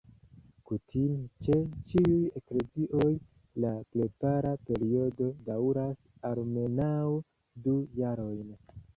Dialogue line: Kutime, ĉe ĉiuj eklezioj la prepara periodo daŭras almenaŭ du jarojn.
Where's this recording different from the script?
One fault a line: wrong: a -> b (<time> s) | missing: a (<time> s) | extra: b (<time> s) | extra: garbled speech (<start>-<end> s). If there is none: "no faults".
no faults